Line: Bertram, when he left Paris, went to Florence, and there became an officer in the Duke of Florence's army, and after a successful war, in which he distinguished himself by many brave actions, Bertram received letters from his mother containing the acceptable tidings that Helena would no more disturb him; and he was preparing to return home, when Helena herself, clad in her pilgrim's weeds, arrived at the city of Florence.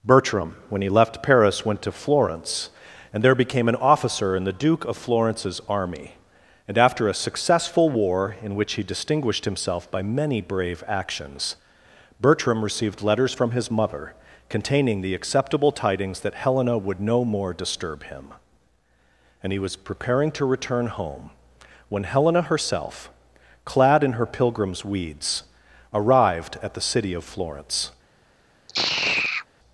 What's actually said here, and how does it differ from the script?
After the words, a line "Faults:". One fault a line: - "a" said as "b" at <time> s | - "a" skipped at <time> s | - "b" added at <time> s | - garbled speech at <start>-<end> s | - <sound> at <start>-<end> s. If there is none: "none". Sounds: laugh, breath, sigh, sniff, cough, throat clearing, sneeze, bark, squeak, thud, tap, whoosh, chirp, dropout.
Bertram, when he left Paris, went to Florence, and there became an officer in the Duke of Florence's army, and after a successful war, in which he distinguished himself by many brave actions, Bertram received letters from his mother containing the acceptable tidings that Helena would no more disturb him; and he was preparing to return home, when Helena herself, clad in her pilgrim's weeds, arrived at the city of Florence.
Faults:
- sigh at 28.7-29.5 s